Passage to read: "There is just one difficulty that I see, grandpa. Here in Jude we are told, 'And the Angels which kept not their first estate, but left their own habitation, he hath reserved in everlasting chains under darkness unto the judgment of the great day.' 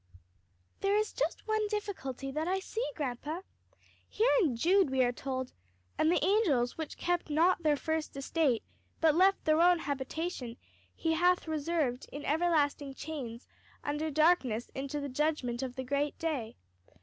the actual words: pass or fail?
pass